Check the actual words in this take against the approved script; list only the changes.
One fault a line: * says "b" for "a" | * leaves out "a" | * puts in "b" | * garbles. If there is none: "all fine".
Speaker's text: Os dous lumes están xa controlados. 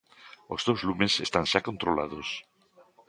all fine